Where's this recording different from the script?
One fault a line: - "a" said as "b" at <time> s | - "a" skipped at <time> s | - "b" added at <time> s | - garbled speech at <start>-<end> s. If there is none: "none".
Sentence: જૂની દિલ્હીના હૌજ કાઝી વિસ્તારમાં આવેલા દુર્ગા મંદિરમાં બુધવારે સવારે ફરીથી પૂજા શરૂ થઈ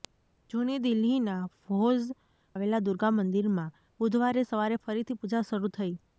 - "કાઝી વિસ્તારમાં" skipped at 2.1 s